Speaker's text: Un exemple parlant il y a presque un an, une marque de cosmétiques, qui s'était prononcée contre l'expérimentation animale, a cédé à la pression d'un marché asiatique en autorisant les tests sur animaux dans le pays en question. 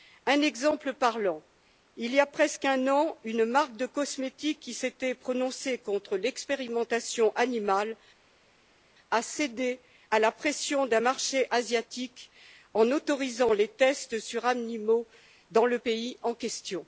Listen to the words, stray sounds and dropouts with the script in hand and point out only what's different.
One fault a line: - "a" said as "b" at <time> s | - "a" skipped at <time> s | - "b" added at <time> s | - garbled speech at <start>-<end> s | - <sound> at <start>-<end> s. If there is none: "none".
none